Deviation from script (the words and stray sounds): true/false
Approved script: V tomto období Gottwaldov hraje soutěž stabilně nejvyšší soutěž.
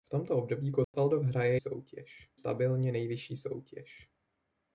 true